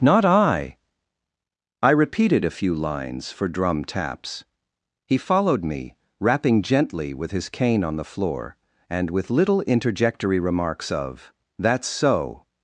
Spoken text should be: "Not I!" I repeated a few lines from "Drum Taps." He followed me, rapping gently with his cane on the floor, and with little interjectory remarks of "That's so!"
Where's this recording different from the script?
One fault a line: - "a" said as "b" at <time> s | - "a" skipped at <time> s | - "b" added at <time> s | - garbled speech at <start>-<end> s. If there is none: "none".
- "from" said as "for" at 3.3 s